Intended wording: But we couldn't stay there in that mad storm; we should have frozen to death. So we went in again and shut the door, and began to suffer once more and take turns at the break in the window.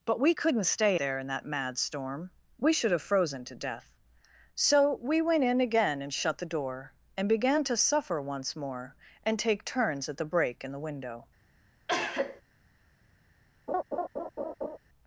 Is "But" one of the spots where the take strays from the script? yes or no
no